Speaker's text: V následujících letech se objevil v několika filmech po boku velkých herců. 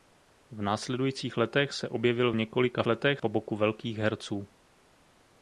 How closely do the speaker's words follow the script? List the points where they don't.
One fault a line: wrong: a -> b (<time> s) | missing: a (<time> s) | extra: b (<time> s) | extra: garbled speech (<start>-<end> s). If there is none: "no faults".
wrong: filmech -> letech (2.9 s)